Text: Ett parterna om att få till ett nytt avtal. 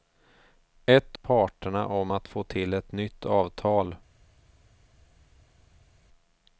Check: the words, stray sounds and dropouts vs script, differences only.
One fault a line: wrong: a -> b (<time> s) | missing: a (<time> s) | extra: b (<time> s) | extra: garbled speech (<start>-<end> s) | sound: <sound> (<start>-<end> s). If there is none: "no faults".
no faults